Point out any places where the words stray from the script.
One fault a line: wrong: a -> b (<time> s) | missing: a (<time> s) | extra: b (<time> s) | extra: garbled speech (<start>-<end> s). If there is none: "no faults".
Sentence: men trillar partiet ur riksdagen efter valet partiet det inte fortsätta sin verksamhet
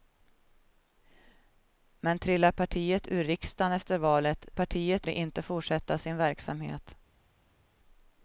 no faults